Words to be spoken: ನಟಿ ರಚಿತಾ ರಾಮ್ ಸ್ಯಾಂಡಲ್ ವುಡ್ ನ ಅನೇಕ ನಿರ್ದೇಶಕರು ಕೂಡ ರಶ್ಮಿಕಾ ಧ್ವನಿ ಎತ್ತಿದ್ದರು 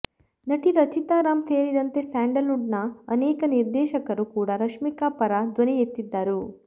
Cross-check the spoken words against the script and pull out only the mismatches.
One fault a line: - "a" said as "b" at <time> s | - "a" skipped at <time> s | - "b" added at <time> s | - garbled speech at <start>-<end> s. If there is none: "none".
- "ಸೇರಿದಂತೆ" added at 1.4 s
- "ಪರ" added at 5.2 s